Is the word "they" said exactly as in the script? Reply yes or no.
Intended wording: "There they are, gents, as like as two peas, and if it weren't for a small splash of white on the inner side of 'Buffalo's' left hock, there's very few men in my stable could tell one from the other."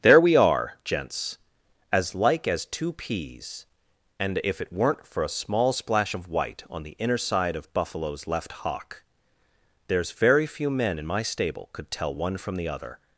no